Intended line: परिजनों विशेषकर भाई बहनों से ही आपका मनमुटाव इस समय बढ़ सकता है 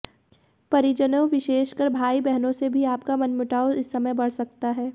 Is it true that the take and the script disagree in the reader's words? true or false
true